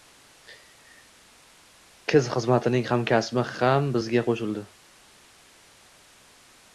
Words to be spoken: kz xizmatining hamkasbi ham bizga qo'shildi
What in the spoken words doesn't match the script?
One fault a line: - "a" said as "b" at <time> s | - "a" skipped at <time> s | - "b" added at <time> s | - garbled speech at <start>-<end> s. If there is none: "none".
none